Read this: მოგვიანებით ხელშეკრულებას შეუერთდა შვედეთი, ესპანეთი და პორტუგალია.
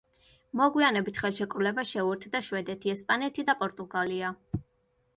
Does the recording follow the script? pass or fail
pass